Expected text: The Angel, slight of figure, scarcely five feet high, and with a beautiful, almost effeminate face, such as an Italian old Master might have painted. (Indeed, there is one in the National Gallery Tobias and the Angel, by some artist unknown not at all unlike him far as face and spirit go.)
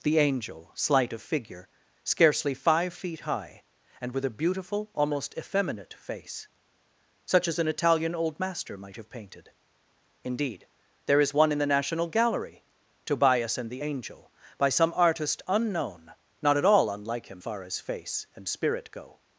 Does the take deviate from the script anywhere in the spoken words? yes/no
no